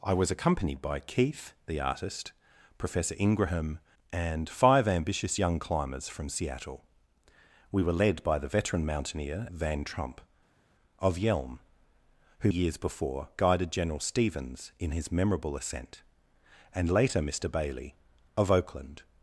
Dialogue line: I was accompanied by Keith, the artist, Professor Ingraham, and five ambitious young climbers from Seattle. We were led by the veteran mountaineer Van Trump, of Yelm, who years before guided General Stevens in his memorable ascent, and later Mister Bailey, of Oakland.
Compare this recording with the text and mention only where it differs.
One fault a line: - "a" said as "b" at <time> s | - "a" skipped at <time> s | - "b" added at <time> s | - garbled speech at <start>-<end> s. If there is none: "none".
none